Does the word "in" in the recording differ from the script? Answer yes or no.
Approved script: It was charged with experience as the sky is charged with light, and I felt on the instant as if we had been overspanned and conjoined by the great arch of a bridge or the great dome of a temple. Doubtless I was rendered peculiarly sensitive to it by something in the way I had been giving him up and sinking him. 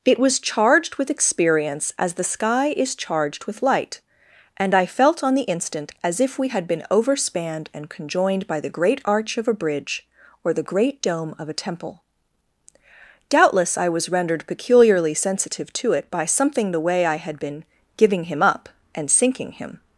yes